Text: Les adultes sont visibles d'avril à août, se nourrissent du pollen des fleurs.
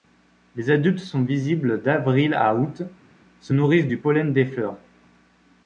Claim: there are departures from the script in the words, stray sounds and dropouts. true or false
false